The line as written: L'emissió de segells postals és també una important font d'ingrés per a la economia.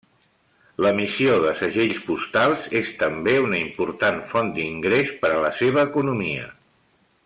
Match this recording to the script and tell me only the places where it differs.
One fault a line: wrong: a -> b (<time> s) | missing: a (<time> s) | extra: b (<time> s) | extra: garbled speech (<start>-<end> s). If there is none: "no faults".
extra: seva (5.6 s)